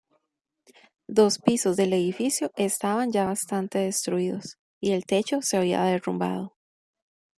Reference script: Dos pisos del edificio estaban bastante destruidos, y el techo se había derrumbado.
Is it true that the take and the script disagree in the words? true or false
true